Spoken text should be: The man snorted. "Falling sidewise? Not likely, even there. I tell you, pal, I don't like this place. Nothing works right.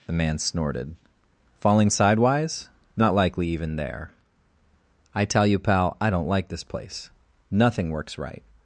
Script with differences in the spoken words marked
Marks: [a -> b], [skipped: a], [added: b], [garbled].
The man snorted. "Falling sidewise? Not likely, even there. I tell you, pal, I don't like this place. Nothing works right.